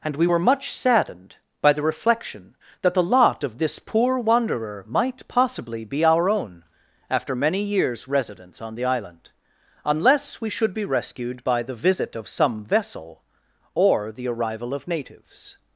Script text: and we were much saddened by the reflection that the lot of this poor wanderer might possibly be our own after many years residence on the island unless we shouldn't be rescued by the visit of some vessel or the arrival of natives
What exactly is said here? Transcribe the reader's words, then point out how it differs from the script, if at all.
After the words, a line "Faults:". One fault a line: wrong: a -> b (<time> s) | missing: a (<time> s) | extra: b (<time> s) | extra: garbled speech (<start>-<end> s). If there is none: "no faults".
and we were much saddened by the reflection that the lot of this poor wanderer might possibly be our own after many years residence on the island unless we should be rescued by the visit of some vessel or the arrival of natives
Faults:
wrong: shouldn't -> should (10.5 s)